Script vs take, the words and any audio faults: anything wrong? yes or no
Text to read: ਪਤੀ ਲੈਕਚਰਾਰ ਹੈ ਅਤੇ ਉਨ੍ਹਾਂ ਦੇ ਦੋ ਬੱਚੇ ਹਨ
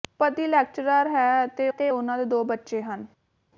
yes